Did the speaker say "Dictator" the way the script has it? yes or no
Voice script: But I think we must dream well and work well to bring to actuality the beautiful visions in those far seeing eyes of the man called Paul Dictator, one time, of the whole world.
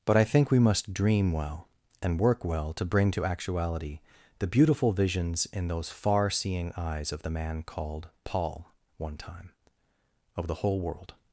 no